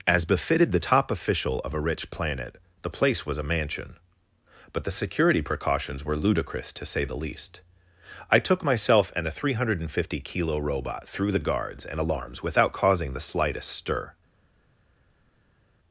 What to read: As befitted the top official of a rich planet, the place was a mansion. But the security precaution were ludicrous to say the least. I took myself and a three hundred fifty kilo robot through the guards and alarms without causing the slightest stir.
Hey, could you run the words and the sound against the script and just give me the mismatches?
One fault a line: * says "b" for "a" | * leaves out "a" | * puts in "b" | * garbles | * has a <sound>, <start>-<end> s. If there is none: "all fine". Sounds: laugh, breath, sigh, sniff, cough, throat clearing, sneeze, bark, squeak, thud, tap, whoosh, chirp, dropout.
* says "precautions" for "precaution"